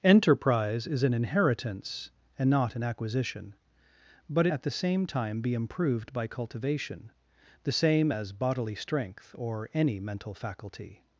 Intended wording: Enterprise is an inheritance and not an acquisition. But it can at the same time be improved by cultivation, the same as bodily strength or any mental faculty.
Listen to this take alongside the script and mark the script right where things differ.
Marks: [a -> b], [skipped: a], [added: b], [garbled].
Enterprise is an inheritance and not an acquisition. But [skipped: it can] at the same time be improved by cultivation, the same as bodily strength or any mental faculty.